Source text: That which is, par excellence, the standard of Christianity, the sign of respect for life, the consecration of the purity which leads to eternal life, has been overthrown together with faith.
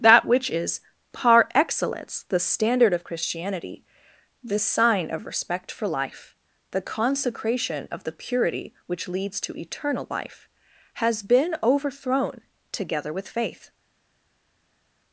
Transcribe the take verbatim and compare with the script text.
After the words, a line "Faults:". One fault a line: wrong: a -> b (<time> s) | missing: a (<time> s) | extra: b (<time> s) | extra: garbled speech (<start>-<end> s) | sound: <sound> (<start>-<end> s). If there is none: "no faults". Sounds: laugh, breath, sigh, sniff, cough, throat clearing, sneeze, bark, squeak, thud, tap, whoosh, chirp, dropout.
That which is, par excellence, the standard of Christianity, the sign of respect for life, the consecration of the purity which leads to eternal life, has been overthrown together with faith.
Faults:
no faults